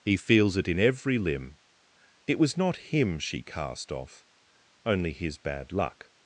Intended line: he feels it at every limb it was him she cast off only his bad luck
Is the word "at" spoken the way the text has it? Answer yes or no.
no